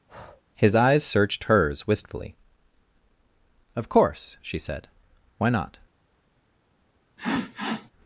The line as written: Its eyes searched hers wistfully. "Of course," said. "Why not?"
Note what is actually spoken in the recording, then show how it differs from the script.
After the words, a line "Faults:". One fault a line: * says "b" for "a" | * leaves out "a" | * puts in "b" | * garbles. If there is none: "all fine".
His eyes searched hers wistfully. "Of course," she said. "Why not?"
Faults:
* says "His" for "Its"
* puts in "she"